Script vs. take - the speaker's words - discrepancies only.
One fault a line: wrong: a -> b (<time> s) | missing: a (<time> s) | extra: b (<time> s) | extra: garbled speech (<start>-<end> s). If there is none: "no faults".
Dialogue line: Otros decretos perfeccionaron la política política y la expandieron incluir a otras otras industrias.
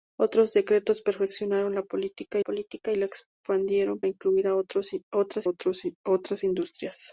no faults